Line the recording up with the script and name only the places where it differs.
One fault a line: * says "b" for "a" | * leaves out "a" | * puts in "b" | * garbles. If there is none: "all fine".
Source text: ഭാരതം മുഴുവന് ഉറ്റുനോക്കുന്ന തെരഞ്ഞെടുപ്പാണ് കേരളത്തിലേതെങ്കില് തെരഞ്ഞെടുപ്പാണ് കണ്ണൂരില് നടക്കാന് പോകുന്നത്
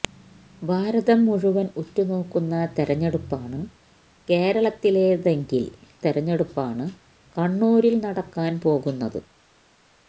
all fine